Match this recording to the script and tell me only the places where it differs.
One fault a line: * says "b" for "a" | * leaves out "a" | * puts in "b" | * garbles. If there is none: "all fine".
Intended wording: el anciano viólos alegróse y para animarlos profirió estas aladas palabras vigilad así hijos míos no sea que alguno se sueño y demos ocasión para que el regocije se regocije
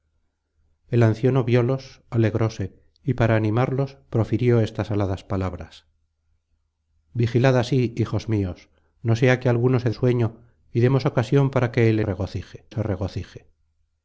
all fine